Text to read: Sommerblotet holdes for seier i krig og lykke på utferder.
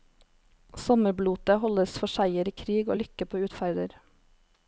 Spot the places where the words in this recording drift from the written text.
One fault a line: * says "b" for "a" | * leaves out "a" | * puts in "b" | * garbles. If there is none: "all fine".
all fine